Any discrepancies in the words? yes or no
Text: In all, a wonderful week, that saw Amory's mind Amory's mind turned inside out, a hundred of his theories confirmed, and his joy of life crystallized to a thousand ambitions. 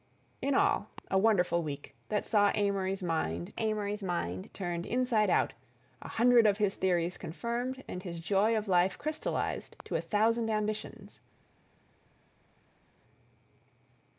no